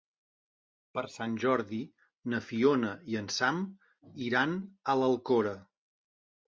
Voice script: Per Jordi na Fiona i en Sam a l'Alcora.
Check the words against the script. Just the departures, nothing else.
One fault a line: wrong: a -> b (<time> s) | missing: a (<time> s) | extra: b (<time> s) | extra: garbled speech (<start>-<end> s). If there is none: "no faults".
extra: Sant (1.1 s)
extra: iran (4.3 s)